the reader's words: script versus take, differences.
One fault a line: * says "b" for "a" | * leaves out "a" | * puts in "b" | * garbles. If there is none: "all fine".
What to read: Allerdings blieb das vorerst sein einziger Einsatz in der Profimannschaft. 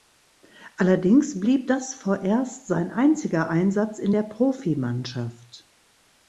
all fine